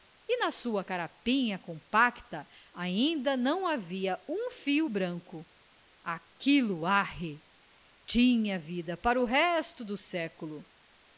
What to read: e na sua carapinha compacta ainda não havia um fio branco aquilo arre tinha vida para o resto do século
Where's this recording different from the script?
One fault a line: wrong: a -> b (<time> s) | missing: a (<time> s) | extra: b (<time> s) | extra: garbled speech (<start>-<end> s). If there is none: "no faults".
no faults